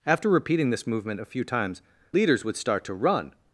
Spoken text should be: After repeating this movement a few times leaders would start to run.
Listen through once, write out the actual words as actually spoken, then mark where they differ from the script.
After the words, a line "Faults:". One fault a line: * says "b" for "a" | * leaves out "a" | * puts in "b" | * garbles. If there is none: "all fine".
After repeating this movement a few times leaders would start to run.
Faults:
all fine